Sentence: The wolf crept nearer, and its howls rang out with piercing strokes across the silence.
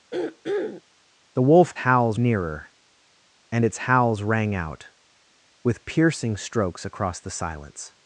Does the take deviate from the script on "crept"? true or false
true